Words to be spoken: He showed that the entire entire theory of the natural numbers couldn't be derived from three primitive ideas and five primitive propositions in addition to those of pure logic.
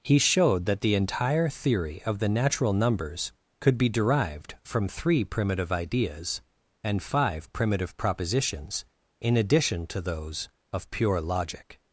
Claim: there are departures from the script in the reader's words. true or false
true